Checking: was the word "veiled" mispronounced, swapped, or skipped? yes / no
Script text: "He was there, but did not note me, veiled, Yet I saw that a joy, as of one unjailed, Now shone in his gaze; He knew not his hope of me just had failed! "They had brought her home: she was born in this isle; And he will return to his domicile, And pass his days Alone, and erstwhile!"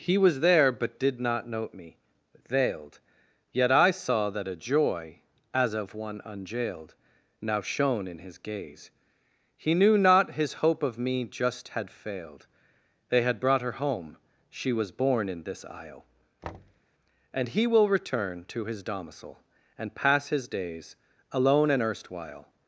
no